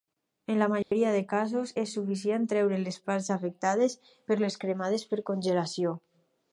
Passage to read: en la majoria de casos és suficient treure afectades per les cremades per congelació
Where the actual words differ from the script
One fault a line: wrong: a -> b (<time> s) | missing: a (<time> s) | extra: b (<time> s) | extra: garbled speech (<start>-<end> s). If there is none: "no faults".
extra: les parts (2.8 s)